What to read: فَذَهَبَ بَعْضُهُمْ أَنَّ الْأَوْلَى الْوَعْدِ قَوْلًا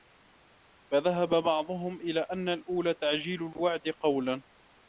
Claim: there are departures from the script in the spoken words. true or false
true